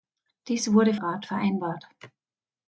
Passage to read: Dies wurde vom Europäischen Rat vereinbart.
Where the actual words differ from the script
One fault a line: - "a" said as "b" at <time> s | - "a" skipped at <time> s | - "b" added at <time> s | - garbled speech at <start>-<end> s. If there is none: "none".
- "vom Europäischen" skipped at 0.9 s